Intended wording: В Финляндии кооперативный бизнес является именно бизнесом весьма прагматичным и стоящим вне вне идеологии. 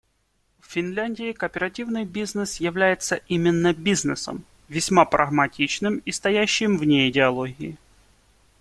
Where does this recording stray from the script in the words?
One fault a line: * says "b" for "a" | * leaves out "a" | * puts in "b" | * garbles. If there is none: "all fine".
* leaves out "вне"